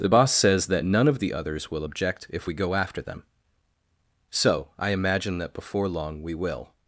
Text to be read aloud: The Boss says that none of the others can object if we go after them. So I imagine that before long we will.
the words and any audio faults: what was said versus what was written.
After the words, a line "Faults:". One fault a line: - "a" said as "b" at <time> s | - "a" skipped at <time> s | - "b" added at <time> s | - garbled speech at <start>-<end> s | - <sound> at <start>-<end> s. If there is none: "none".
The Boss says that none of the others will object if we go after them. So I imagine that before long we will.
Faults:
- "can" said as "will" at 1.7 s